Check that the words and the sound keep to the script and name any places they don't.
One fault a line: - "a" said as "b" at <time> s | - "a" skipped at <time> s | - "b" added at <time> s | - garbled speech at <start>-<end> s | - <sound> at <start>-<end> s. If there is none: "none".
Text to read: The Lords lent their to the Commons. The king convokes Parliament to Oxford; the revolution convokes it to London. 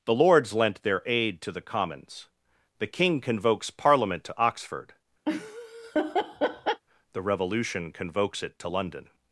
- "aid" added at 1.1 s
- laugh at 5.3-6.8 s